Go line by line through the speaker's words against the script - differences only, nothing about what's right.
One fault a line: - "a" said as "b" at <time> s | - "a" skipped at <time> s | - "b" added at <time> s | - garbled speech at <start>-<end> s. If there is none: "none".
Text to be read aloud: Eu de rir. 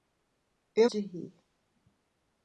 none